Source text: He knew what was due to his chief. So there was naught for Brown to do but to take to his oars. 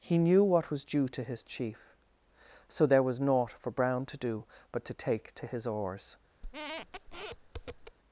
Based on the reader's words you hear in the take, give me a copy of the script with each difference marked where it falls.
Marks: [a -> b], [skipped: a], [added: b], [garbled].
He knew what was due to his chief. So there was naught for Brown to do but to take to his oars.